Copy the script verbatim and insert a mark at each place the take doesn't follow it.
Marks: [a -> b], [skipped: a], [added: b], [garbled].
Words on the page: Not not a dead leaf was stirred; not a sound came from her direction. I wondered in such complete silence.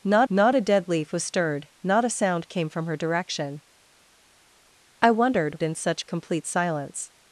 Not not a dead leaf was stirred; not a sound came from her direction. I wondered in such complete silence.